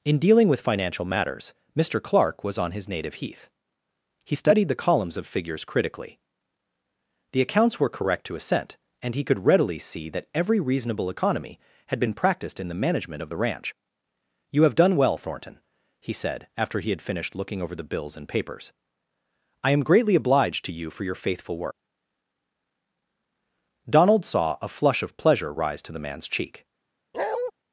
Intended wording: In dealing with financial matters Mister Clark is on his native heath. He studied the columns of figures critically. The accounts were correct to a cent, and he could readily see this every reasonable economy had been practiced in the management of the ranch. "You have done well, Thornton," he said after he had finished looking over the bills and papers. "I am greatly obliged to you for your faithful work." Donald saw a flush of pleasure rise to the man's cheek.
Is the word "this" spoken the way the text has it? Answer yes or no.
no